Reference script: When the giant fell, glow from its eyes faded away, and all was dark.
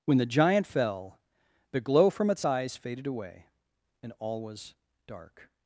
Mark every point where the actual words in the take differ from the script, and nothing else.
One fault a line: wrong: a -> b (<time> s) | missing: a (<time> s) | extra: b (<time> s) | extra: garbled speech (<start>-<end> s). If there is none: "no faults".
extra: the (1.7 s)